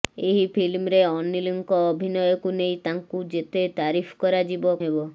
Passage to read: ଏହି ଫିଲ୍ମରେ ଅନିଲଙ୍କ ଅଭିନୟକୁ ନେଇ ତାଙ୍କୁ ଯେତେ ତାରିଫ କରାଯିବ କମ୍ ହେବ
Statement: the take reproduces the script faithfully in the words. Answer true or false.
false